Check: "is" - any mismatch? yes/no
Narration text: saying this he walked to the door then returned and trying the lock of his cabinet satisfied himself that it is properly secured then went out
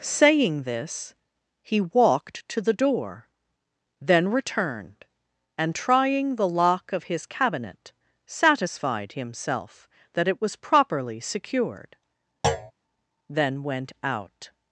yes